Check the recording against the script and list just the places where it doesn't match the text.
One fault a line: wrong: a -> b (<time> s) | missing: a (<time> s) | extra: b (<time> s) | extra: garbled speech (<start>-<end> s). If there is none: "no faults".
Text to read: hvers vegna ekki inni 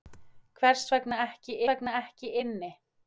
extra: vegna ekki (1.7 s)